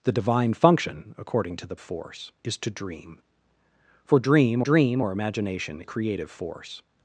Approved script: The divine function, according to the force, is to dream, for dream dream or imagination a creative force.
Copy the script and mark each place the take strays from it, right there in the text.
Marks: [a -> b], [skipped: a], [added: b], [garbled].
The divine function, according to the force, is to dream, for dream dream or imagination a creative force.